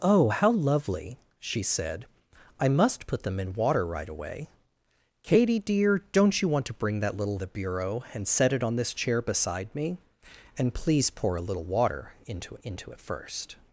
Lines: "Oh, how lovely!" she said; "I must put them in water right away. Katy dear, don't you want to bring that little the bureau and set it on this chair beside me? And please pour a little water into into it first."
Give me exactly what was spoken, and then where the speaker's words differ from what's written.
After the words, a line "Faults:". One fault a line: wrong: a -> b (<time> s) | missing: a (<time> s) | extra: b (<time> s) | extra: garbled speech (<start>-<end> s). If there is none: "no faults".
"Oh, how lovely!" she said; "I must put them in water right away. Katy dear, don't you want to bring that little the bureau and set it on this chair beside me? And please pour a little water into into it first."
Faults:
no faults